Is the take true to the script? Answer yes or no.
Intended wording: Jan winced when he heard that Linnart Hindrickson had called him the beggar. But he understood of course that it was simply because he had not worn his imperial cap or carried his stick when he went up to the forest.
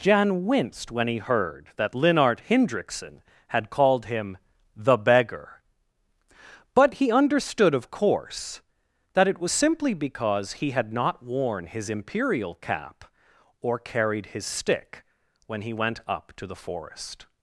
yes